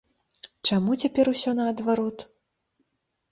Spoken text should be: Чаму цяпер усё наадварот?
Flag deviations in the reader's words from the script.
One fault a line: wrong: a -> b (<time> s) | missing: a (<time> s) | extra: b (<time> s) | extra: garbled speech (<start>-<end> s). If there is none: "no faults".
no faults